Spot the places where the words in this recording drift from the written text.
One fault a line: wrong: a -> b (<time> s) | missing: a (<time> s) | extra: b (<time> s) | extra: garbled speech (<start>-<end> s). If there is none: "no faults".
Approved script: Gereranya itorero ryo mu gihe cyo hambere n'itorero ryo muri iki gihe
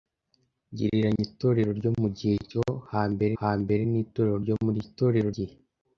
extra: hambere (3.4 s)
wrong: iki -> itorero (4.8 s)